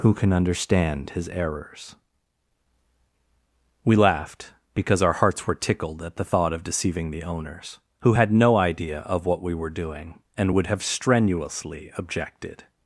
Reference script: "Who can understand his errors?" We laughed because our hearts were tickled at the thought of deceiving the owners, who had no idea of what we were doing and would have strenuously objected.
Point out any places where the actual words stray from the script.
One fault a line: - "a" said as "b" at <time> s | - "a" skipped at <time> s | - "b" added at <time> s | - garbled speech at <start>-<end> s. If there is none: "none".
none